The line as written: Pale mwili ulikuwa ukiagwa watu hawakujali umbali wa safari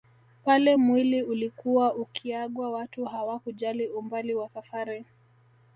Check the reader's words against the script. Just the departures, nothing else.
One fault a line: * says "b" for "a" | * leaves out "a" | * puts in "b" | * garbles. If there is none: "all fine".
all fine